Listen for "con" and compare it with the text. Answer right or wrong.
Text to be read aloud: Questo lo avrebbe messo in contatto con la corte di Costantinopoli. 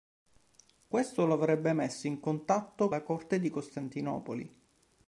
wrong